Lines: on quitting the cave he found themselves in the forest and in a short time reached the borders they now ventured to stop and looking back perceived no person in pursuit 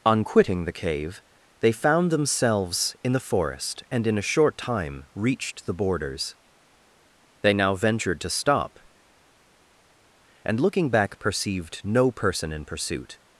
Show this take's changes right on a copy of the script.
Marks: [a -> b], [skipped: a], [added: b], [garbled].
on quitting the cave [he -> they] found themselves in the forest and in a short time reached the borders they now ventured to stop and looking back perceived no person in pursuit